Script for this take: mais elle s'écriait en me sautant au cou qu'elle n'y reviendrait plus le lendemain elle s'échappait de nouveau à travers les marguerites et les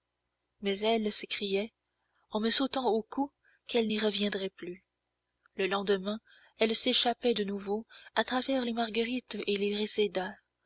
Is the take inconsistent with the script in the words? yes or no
no